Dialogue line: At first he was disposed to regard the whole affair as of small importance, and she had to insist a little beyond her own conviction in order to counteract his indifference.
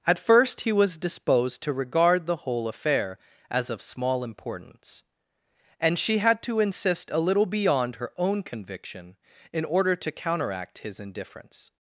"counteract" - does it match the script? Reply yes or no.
yes